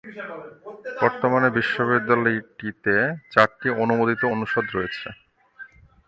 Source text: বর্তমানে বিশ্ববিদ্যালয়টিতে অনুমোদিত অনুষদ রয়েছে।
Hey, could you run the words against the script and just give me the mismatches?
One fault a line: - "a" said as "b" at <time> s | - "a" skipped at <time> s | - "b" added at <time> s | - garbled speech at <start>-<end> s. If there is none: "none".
- "চারটি" added at 3.3 s